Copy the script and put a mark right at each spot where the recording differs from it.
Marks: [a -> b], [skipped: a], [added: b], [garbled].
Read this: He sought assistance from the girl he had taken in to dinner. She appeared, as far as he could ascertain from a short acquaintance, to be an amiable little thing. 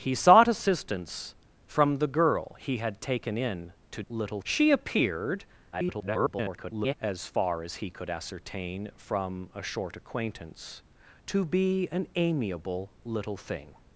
He sought assistance from the girl he had taken in to [dinner. -> little] She appeared, [garbled] as far as he could ascertain from a short acquaintance, to be an amiable little thing.